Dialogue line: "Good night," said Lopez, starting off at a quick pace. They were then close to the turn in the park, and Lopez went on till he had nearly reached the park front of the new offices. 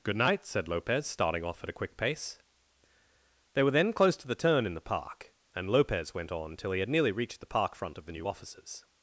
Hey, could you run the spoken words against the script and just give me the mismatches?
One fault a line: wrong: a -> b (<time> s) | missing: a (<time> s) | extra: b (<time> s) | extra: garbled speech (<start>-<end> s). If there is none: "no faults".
no faults